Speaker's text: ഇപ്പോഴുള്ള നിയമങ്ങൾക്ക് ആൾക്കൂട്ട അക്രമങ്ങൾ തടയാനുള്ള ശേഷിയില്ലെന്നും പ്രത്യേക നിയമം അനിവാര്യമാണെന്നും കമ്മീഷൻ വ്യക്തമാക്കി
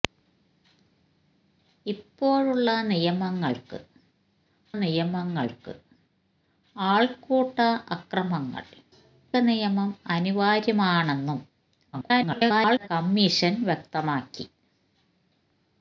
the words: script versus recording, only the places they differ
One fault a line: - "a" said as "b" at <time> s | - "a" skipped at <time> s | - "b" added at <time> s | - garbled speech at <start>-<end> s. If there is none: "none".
- "നിയമങ്ങൾക്ക്" added at 4.7 s
- "തടയാനുള്ള ശേഷിയില്ലെന്നും പ്രത്യേക" skipped at 8.6 s
- garbled speech at 11.9-12.9 s